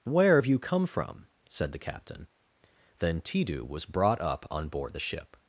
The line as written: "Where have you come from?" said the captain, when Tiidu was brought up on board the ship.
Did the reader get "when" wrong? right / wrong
wrong